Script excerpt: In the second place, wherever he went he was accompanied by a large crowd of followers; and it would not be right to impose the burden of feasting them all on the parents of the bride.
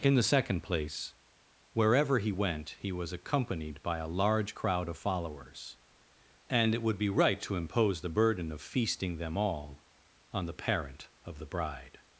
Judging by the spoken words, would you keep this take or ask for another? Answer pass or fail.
fail